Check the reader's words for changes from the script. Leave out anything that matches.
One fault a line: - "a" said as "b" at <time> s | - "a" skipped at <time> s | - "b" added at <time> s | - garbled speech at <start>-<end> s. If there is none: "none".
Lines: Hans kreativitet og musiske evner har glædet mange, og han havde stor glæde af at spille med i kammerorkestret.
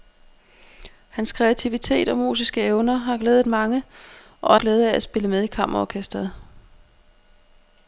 - "han havde stor" skipped at 4.5 s